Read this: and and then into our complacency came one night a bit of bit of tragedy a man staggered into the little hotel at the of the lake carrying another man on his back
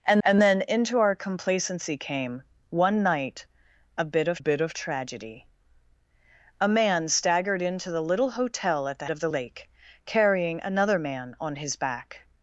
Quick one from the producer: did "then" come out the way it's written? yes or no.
yes